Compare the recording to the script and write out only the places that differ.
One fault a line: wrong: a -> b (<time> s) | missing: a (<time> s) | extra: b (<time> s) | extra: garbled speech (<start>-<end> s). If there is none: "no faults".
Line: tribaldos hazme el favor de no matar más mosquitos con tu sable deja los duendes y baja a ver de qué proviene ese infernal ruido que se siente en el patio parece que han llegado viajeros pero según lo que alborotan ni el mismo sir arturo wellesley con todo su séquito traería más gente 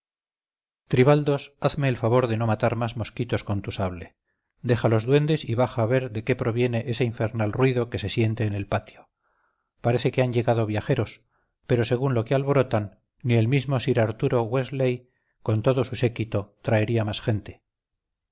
no faults